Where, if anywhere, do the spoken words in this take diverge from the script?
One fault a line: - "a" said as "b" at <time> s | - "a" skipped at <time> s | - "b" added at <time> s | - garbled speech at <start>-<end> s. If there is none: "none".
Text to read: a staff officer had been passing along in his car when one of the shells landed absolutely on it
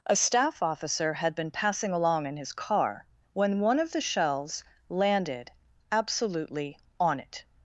none